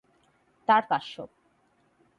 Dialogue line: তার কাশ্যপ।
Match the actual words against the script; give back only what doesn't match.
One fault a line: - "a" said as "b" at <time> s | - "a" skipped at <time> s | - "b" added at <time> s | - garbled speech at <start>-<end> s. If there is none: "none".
none